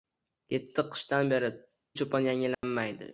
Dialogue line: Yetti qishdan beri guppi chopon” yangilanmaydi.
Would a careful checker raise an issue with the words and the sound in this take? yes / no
yes